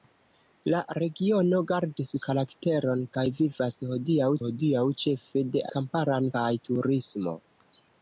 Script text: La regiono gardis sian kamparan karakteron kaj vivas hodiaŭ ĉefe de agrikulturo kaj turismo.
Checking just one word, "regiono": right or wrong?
right